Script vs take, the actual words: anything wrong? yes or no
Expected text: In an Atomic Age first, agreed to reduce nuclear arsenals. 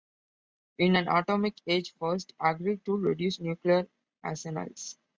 no